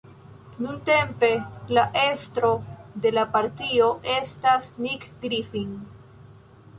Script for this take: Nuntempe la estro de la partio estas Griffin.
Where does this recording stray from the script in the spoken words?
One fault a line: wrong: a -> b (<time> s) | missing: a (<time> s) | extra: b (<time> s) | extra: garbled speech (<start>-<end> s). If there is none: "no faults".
extra: Nick (4.9 s)